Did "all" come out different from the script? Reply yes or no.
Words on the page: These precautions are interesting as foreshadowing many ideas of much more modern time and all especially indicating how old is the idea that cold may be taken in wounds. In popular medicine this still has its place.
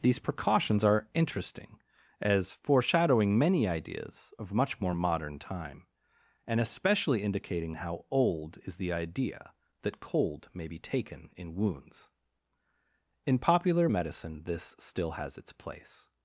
yes